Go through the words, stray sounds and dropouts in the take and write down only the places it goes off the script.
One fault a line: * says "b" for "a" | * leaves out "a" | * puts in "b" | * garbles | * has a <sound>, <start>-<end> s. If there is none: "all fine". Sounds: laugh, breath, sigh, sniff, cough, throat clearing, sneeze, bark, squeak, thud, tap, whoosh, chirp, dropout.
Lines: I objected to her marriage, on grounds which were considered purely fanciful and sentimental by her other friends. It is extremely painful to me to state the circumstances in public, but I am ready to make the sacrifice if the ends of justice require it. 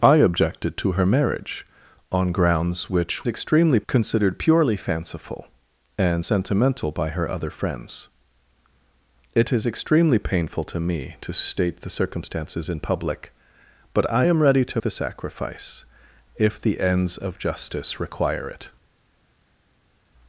* says "extremely" for "were"
* leaves out "make"